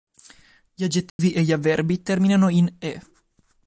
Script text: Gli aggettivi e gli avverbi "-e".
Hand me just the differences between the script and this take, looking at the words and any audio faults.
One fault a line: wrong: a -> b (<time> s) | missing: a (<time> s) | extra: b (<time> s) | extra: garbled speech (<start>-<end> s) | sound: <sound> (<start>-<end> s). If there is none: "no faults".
sound: dropout (1.1-1.2 s)
extra: terminano in (2.0 s)